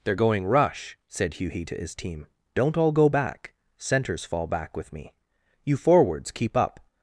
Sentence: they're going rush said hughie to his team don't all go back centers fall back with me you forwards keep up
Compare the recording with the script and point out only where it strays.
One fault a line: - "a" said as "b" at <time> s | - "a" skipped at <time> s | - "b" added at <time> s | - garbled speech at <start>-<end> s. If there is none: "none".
none